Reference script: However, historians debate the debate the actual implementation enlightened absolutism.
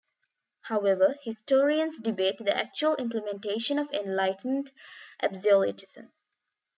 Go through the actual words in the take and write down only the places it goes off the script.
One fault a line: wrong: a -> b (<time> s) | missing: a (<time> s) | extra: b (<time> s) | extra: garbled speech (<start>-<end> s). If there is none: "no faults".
missing: debate the (2.6 s)
extra: of (3.8 s)